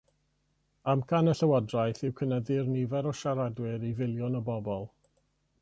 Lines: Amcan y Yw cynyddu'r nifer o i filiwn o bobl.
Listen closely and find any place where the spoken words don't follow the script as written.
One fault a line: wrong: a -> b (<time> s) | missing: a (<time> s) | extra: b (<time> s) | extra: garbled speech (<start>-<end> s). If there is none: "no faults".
extra: Llywodraeth (1.4 s)
extra: siaradwyr (3.2 s)